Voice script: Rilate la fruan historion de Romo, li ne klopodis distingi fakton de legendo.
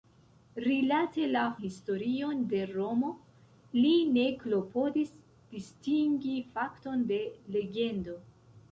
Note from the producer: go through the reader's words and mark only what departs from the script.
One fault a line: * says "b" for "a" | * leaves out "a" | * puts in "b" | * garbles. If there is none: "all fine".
* leaves out "fruan"